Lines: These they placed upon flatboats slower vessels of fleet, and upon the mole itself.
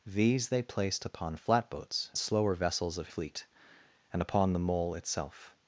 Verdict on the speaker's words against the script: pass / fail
pass